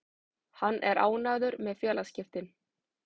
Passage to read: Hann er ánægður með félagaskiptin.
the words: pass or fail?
pass